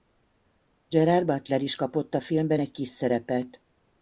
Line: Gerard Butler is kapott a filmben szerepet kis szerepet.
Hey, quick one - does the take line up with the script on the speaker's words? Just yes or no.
no